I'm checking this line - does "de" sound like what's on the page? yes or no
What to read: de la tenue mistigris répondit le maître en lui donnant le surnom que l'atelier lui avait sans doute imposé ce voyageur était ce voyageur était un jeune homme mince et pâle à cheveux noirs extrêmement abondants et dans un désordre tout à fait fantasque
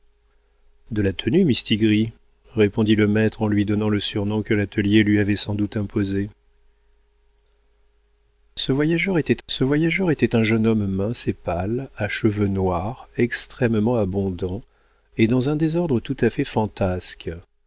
yes